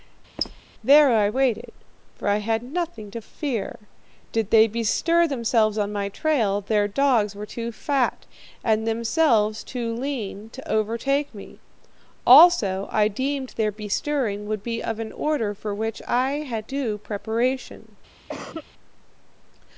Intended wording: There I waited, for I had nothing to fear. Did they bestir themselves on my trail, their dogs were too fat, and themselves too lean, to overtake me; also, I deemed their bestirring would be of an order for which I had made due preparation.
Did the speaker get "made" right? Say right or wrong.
wrong